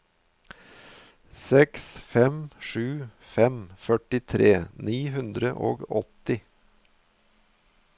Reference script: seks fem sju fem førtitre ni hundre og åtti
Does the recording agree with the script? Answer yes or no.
yes